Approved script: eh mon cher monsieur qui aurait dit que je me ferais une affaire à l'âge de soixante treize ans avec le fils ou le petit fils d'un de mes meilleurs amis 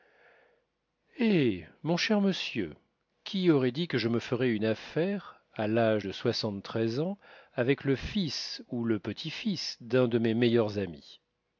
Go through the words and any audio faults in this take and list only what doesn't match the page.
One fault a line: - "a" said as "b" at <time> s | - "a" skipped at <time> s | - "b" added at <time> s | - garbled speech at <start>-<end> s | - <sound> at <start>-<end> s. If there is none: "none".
none